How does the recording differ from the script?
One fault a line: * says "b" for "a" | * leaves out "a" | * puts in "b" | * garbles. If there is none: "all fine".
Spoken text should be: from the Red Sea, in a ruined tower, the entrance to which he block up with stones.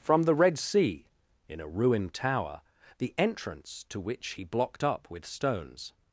* says "blocked" for "block"